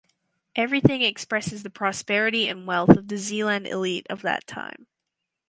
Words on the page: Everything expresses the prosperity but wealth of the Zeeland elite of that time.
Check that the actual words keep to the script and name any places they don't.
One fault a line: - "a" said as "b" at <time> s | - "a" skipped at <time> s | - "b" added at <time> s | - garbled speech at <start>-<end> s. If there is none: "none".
- "but" said as "and" at 2.5 s